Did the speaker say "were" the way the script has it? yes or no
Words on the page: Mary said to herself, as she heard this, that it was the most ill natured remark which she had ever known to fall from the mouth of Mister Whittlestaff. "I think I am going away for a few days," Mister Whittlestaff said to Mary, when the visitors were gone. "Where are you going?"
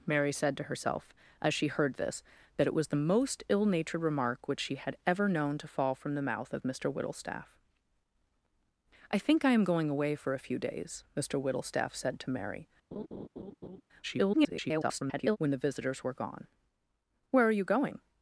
yes